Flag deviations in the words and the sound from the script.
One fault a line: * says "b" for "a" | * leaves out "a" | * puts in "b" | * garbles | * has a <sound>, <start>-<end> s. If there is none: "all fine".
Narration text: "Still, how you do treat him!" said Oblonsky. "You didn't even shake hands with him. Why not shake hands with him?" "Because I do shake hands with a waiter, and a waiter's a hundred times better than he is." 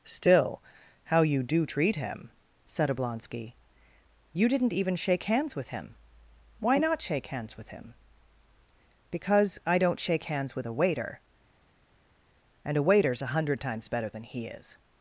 * says "don't" for "do"